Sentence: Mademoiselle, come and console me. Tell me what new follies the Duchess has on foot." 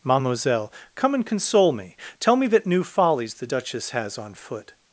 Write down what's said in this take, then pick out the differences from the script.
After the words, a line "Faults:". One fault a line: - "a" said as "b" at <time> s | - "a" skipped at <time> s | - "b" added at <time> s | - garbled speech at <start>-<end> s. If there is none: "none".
Mademoiselle, come and console me. Tell me that new follies the Duchess has on foot."
Faults:
- "what" said as "that" at 2.5 s